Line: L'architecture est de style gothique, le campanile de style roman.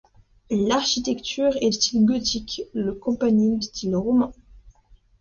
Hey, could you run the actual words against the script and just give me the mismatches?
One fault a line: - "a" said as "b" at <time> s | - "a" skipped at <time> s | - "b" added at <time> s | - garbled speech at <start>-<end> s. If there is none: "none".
- "de" skipped at 1.7 s
- "de" skipped at 3.6 s